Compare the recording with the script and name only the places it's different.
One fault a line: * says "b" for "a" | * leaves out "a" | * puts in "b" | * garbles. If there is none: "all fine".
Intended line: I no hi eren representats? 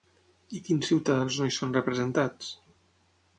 * puts in "quins ciutadans"
* says "són" for "eren"